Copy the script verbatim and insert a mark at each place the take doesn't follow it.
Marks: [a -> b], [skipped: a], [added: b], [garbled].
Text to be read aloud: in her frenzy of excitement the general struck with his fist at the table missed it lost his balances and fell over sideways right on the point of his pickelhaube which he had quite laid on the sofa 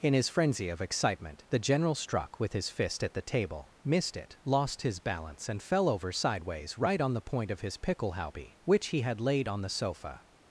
in [her -> his] frenzy of excitement the general struck with his fist at the table missed it lost his [balances -> balance] and fell over sideways right on the point of his pickelhaube which he had [skipped: quite] laid on the sofa